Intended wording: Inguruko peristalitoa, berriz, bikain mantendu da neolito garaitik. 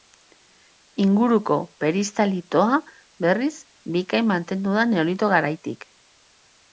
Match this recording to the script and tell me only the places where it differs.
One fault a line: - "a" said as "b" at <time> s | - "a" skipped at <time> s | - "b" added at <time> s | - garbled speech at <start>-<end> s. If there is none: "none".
none